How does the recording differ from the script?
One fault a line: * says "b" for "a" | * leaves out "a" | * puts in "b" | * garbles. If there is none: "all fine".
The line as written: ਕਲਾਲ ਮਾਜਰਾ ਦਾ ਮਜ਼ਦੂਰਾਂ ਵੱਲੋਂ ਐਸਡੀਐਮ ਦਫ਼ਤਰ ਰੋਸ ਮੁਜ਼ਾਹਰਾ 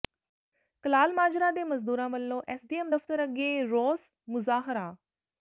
* says "ਦੇ" for "ਦਾ"
* puts in "ਅੱਗੇ"